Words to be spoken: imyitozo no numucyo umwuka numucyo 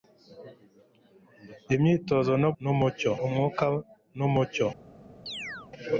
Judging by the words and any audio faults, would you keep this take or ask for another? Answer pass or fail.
fail